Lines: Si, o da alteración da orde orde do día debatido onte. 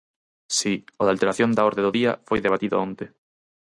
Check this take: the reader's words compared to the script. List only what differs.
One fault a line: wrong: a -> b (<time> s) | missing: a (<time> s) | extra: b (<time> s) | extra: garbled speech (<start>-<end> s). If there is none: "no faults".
missing: orde (1.8 s)
extra: foi (2.3 s)